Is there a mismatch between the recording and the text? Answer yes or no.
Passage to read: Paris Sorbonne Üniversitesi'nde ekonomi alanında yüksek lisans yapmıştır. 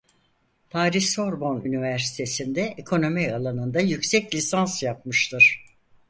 no